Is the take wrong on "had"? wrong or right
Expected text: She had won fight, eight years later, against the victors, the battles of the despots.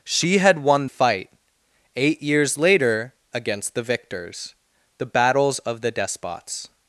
right